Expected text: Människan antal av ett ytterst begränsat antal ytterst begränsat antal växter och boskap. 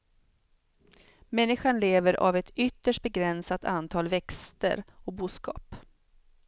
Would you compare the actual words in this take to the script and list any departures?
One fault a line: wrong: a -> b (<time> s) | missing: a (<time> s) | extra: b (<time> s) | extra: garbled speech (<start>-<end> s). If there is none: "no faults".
wrong: antal -> lever (1.8 s)
missing: ytterst begränsat antal (4.1 s)